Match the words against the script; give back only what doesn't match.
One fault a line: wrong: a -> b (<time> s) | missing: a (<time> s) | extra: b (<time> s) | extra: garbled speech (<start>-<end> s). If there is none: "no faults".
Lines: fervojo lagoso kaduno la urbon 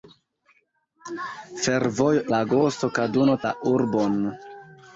no faults